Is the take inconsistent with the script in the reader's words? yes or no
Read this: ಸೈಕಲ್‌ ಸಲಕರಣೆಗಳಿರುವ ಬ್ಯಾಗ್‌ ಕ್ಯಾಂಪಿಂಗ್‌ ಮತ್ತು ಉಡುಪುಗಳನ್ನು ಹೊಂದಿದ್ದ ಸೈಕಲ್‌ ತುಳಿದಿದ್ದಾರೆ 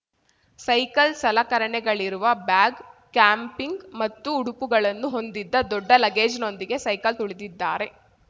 yes